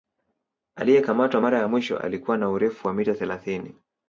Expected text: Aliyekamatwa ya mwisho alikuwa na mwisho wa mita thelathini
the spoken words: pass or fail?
fail